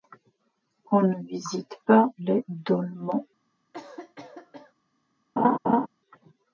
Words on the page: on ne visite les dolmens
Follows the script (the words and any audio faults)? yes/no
no